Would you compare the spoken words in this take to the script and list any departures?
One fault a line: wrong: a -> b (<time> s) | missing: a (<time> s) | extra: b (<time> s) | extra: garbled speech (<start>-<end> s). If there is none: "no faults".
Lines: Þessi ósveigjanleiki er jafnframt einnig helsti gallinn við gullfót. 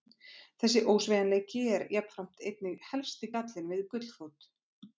no faults